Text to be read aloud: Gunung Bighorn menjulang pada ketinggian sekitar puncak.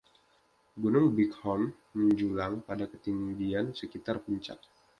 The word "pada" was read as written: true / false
true